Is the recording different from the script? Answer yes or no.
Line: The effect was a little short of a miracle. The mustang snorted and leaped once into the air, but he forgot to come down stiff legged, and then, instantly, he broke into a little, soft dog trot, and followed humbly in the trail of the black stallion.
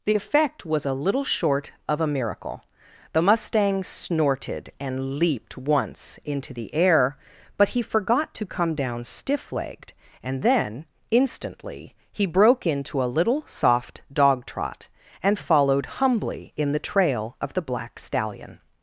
no